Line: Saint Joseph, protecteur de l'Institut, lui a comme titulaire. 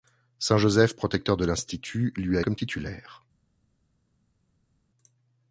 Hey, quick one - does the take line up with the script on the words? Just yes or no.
yes